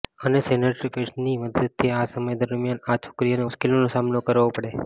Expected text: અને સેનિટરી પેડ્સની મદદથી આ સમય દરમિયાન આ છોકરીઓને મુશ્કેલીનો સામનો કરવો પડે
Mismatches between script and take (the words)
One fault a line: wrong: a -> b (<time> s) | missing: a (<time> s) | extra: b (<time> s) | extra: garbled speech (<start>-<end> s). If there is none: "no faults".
no faults